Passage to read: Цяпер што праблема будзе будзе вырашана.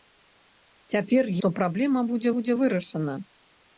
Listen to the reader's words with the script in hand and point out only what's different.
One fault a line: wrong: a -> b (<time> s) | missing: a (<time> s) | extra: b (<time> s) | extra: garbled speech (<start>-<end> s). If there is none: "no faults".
no faults